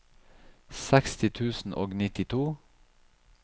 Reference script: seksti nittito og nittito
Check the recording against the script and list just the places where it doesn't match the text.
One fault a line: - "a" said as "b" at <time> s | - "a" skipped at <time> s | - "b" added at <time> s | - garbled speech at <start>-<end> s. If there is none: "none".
- "nittito" said as "tusen" at 1.3 s